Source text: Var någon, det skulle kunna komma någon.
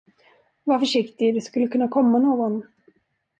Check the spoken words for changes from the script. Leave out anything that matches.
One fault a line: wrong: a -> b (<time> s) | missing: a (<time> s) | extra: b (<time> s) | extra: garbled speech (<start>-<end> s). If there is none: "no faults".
wrong: någon -> försiktig (0.8 s)